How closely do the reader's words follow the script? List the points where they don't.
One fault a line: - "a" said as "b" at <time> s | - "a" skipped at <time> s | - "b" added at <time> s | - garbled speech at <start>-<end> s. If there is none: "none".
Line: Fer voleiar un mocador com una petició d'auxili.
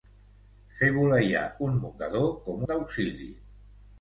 - "una petició" skipped at 2.7 s